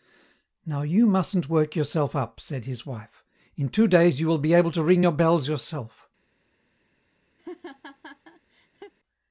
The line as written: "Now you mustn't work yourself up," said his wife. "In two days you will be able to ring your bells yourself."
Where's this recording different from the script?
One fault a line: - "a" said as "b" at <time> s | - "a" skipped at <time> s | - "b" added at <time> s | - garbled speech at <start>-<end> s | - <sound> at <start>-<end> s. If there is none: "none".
- laugh at 7.4-8.9 s